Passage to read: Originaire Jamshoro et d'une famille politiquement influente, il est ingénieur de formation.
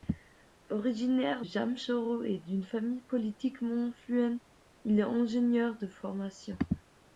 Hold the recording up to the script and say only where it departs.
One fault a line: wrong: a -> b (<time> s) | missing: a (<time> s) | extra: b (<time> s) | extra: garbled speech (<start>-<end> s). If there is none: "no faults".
no faults